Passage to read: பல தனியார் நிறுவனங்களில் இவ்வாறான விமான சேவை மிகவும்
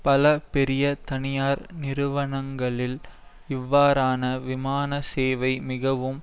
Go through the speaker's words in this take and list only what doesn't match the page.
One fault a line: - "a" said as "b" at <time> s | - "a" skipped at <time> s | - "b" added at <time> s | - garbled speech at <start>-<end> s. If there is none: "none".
- "பெரிய" added at 0.5 s